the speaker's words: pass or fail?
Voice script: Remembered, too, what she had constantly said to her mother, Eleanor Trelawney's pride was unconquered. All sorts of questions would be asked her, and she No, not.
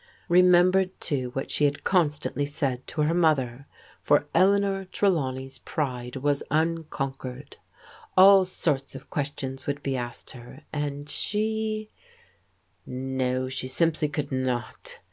fail